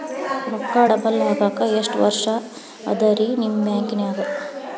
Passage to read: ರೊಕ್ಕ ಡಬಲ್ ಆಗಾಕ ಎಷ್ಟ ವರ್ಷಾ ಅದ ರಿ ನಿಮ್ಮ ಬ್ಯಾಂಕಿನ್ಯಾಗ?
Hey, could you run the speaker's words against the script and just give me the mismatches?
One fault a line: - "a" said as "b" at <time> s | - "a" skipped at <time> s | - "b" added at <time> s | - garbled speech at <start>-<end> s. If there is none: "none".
none